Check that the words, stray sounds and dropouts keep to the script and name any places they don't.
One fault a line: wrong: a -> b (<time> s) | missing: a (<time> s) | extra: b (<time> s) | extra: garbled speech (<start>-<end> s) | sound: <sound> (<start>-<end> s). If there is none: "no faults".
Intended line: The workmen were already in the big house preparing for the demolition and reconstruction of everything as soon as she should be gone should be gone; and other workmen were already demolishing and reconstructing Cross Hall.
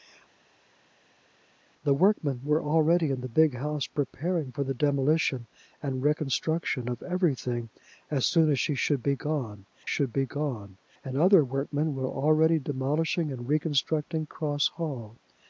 no faults